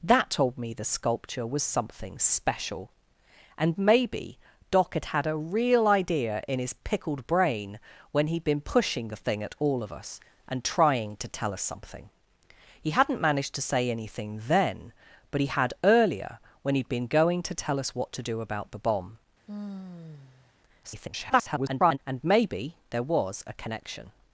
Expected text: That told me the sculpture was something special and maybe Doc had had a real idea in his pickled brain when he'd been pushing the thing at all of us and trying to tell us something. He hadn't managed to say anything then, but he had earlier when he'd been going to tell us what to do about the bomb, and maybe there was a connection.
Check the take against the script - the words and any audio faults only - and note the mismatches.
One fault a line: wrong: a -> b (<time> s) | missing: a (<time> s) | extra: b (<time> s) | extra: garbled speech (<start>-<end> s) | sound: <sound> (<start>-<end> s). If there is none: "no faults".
sound: sigh (19.5-20.5 s)
extra: garbled speech (20.8-22.0 s)